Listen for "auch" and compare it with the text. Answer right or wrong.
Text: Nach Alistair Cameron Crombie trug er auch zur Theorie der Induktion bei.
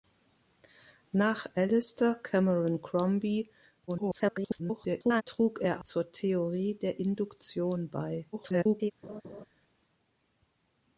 wrong